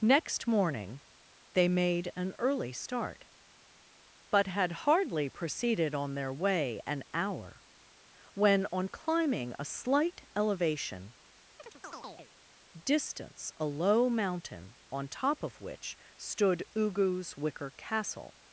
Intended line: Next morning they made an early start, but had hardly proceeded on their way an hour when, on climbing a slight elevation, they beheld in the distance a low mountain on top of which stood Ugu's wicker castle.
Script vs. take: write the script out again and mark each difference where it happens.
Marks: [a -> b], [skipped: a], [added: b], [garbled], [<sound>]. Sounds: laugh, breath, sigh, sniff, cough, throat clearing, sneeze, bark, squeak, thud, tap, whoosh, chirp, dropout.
Next morning they made an early start, but had hardly proceeded on their way an hour when, on climbing a slight elevation, [skipped: they beheld in the] [chirp] distance a low mountain on top of which stood Ugu's wicker castle.